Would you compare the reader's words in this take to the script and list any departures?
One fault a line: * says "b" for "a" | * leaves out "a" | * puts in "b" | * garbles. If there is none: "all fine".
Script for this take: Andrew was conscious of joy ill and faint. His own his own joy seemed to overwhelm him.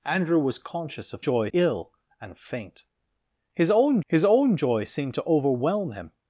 all fine